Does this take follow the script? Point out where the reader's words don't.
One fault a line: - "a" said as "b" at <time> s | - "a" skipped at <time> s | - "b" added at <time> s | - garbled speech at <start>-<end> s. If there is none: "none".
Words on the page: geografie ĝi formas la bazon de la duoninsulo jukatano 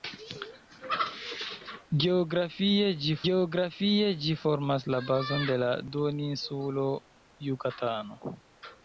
- "geografie ĝi" added at 3.3 s